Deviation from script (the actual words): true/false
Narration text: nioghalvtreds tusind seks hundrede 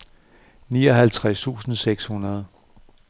false